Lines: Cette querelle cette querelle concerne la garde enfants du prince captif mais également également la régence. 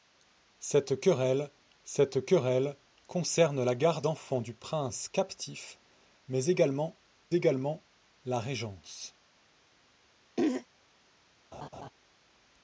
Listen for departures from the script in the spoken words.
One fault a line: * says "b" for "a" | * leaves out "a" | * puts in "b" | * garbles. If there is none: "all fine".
all fine